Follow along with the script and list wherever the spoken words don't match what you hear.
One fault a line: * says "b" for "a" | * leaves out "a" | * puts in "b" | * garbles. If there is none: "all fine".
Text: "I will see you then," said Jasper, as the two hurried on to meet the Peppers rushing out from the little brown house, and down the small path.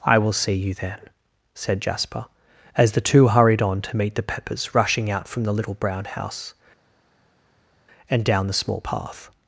all fine